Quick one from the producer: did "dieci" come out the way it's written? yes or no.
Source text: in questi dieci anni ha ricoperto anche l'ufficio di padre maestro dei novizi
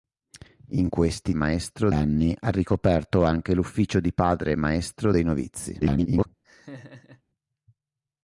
no